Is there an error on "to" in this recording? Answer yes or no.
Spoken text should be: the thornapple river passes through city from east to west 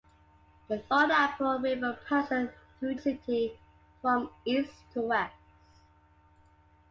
no